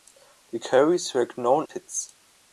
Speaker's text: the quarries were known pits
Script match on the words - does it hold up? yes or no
yes